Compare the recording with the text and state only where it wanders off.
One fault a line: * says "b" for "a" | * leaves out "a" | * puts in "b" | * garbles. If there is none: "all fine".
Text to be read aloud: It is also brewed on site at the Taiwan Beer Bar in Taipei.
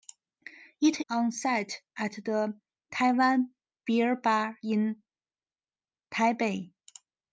* leaves out "is also brewed"